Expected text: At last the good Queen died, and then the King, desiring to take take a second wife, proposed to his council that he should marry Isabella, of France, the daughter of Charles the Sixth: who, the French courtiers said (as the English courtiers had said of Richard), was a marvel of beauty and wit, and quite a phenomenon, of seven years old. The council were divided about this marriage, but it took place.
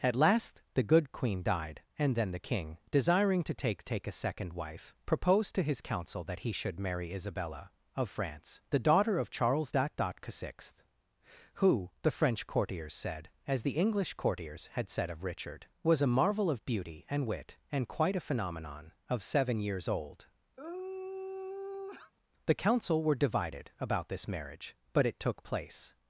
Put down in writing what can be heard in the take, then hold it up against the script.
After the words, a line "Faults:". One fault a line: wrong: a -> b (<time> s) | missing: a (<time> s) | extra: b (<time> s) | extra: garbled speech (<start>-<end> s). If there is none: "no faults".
At last the good Queen died, and then the King, desiring to take take a second wife, proposed to his council that he should marry Isabella, of France, the daughter of Charles the Sixth: who, the French courtiers said (as the English courtiers had said of Richard), was a marvel of beauty and wit, and quite a phenomenon, of seven years old. The council were divided about this marriage, but it took place.
Faults:
no faults